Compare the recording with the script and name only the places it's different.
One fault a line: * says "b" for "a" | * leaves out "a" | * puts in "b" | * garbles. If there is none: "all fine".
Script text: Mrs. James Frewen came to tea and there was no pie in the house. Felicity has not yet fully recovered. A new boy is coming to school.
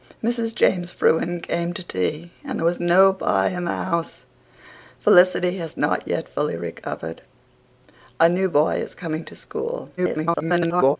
* garbles